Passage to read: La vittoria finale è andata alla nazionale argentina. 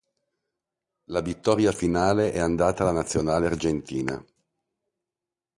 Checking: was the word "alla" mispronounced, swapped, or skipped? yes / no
no